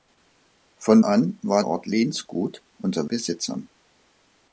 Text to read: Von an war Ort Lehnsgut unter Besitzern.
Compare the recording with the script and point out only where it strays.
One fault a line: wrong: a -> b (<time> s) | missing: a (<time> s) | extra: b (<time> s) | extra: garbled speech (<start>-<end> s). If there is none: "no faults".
no faults